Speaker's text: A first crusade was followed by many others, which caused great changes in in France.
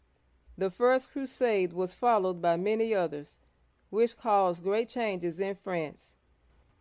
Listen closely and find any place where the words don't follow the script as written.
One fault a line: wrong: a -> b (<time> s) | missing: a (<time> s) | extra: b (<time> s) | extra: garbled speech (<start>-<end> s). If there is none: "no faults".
wrong: A -> The (0.6 s)
missing: in (5.6 s)